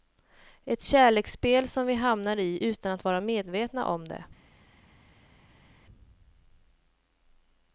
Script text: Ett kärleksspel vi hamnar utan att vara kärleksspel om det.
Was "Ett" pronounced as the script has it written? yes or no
yes